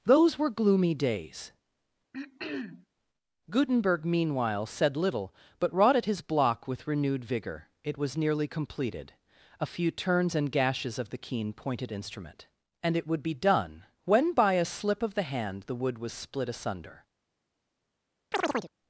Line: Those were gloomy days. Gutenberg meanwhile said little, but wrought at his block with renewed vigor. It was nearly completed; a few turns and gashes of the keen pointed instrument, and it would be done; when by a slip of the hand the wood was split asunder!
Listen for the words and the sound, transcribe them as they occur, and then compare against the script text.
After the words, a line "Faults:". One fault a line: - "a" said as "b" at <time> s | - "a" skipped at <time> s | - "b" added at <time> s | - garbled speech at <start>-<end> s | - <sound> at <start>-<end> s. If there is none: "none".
Those were gloomy days. Gutenberg meanwhile said little, but wrought at his block with renewed vigor. It was nearly completed; a few turns and gashes of the keen pointed instrument, and it would be done; when by a slip of the hand the wood was split asunder!
Faults:
- throat clearing at 2.1-2.9 s
- chirp at 18.3-18.7 s